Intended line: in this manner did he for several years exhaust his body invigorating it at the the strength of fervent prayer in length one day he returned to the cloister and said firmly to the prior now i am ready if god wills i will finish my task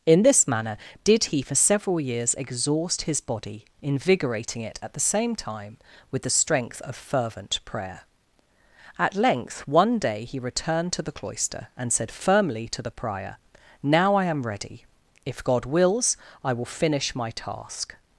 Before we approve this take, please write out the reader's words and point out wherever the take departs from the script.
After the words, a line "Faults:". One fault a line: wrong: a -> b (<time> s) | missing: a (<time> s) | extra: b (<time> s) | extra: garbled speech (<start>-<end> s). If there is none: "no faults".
in this manner did he for several years exhaust his body invigorating it at the same time with the strength of fervent prayer at length one day he returned to the cloister and said firmly to the prior now i am ready if god wills i will finish my task
Faults:
extra: same time with (5.0 s)
wrong: in -> at (9.0 s)